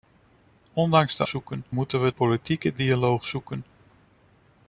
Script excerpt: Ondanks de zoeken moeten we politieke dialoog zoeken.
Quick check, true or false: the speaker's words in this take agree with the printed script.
true